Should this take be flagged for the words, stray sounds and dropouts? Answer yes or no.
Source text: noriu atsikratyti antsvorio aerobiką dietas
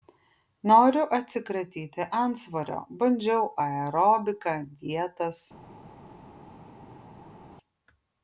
yes